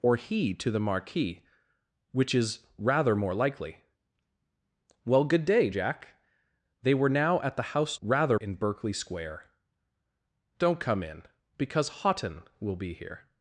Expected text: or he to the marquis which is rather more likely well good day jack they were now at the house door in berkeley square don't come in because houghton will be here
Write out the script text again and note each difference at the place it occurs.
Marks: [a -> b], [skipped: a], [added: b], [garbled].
or he to the marquis which is rather more likely well good day jack they were now at the house [door -> rather] in berkeley square don't come in because houghton will be here